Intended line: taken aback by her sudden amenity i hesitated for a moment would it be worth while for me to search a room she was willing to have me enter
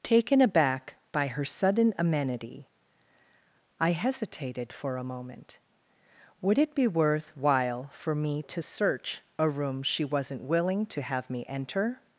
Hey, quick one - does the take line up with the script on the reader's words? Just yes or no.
no